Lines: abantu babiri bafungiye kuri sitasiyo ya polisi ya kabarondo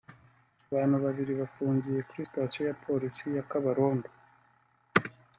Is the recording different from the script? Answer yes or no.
no